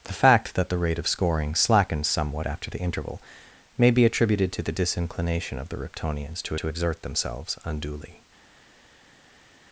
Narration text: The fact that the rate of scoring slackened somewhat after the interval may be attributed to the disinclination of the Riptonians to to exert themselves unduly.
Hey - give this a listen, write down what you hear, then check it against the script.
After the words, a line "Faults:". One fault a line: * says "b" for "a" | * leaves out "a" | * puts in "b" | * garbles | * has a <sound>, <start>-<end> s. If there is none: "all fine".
The fact that the rate of scoring slackened somewhat after the interval may be attributed to the disinclination of the Riptonians to to exert themselves unduly.
Faults:
all fine